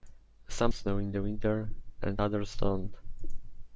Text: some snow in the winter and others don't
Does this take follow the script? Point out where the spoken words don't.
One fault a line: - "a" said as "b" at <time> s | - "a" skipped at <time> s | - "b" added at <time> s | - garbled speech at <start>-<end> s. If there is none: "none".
none